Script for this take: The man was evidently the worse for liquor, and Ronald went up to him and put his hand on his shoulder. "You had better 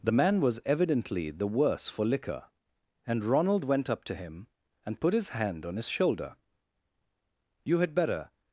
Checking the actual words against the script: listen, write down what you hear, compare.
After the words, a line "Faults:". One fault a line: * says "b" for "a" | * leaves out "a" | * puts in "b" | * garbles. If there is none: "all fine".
The man was evidently the worse for liquor, and Ronald went up to him and put his hand on his shoulder. "You had better
Faults:
all fine